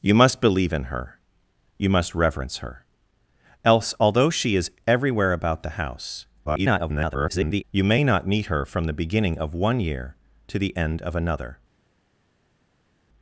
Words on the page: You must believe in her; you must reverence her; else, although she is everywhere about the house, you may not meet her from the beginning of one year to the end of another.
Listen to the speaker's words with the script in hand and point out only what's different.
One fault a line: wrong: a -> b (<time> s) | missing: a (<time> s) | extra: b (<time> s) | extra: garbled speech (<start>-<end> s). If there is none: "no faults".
extra: garbled speech (6.4-7.6 s)